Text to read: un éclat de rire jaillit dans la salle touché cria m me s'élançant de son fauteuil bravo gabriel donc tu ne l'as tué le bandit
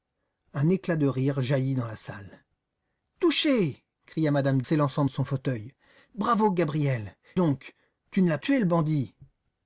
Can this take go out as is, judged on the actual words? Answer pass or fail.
pass